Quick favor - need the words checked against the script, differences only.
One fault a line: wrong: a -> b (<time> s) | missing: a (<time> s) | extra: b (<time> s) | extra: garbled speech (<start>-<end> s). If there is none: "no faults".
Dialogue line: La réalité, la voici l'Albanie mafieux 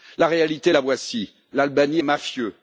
no faults